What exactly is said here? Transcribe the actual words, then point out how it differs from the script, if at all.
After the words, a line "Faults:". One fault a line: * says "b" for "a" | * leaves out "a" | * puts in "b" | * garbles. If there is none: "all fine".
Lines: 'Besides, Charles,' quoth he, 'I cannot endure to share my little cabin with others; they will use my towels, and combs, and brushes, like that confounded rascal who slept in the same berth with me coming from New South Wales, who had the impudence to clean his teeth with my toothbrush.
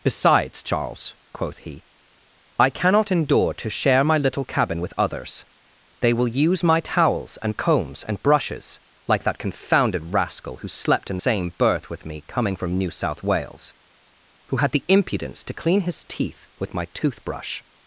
'Besides, Charles,' quoth he, 'I cannot endure to share my little cabin with others; they will use my towels, and combs, and brushes, like that confounded rascal who slept in same berth with me coming from New South Wales, who had the impudence to clean his teeth with my toothbrush.
Faults:
* leaves out "the"